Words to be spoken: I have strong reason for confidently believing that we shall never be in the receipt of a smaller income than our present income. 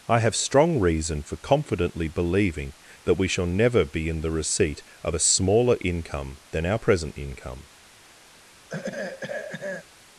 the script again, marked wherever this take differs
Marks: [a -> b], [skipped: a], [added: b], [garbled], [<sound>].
I have strong reason for confidently believing that we shall never be in the receipt of a smaller income than our present income. [throat clearing]